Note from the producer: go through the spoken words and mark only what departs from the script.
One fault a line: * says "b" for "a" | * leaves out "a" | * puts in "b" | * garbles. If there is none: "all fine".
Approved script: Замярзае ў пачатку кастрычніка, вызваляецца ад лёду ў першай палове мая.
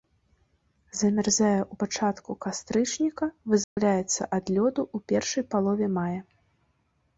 all fine